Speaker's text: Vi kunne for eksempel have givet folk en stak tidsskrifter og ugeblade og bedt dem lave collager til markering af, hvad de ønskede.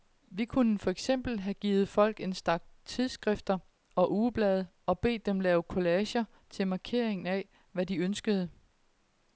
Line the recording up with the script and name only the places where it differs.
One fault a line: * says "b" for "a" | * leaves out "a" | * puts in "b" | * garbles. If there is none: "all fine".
all fine